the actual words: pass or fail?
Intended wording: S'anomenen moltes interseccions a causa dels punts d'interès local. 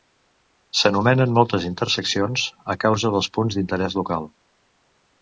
pass